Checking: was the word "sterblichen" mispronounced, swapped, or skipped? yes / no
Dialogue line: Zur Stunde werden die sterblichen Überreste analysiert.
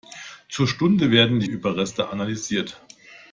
yes